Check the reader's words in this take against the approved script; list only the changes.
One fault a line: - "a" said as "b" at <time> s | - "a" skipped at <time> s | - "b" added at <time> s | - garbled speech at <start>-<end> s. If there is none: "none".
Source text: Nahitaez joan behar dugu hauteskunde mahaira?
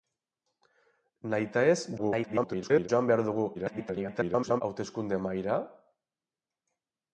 - garbled speech at 2.0-2.9 s
- garbled speech at 3.5-4.6 s